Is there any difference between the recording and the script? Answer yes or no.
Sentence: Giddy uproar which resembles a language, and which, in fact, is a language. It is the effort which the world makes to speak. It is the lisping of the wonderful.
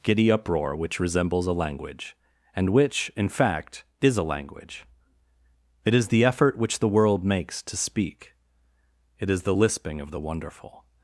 no